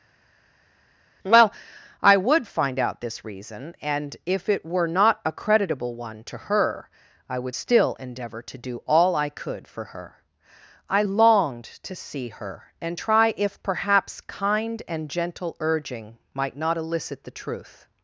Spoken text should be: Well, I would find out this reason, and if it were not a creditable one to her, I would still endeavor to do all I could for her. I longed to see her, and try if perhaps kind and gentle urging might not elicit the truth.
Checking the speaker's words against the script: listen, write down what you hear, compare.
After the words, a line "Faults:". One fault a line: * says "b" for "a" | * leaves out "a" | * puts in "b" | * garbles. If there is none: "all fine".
Well, I would find out this reason, and if it were not a creditable one to her, I would still endeavor to do all I could for her. I longed to see her, and try if perhaps kind and gentle urging might not elicit the truth.
Faults:
all fine